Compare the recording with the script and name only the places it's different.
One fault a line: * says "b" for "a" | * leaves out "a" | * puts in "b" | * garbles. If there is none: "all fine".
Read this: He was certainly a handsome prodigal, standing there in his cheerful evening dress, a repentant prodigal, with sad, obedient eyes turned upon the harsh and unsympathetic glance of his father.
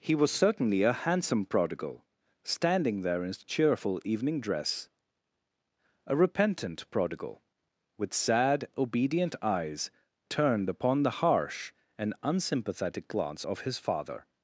all fine